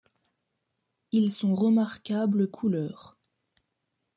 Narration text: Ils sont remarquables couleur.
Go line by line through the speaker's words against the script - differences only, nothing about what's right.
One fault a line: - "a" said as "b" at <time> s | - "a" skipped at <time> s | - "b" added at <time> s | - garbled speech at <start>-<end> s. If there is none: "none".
none